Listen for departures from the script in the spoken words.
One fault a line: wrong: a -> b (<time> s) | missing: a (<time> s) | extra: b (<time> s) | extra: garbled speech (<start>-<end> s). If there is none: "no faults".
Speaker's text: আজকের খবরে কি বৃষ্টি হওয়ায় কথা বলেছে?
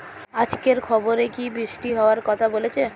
no faults